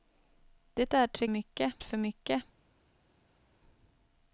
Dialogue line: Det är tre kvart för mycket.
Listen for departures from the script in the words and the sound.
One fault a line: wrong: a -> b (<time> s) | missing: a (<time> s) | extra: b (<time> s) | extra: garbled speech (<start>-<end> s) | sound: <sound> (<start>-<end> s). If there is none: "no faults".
wrong: kvart -> mycket (1.3 s)